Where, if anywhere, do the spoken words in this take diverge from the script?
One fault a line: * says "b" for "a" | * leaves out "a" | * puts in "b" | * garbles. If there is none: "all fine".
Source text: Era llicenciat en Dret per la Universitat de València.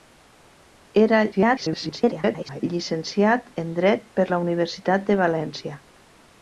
* garbles